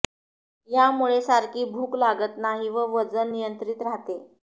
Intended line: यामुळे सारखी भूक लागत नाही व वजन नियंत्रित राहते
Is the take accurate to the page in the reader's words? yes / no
yes